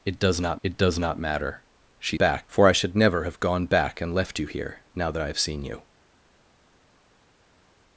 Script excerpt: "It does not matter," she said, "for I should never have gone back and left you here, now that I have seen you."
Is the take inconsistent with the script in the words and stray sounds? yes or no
yes